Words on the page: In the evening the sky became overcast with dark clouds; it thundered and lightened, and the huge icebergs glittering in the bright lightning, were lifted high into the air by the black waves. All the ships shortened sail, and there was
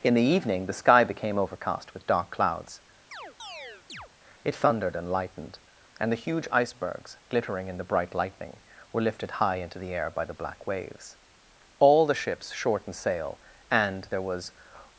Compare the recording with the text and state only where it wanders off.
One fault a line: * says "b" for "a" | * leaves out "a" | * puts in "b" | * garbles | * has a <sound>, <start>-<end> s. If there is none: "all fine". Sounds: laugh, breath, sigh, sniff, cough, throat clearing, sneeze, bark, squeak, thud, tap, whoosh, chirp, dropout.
* has a chirp, 3.1-4.1 s